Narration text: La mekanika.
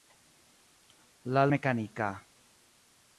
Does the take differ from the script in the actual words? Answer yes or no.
no